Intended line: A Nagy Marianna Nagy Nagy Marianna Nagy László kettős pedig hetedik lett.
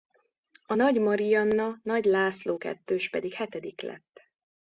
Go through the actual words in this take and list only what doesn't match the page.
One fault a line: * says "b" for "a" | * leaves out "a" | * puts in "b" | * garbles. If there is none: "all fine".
* leaves out "Nagy Marianna Nagy"